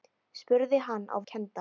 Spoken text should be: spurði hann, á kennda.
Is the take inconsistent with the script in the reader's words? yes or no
no